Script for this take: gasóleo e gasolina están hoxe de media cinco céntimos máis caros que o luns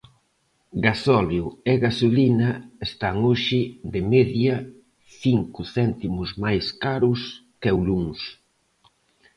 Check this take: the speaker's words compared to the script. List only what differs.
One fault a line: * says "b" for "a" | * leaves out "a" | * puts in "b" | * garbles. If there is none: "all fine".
all fine